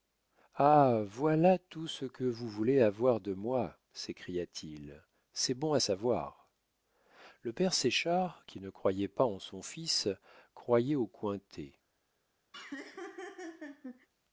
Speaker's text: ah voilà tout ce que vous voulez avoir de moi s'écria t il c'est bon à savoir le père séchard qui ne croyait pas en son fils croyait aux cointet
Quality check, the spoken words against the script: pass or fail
pass